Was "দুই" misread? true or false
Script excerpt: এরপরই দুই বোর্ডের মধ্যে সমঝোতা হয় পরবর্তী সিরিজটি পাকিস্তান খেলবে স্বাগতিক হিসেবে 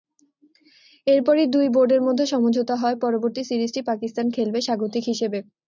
false